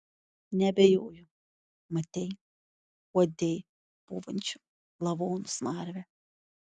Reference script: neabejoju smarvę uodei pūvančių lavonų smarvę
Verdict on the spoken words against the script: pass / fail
fail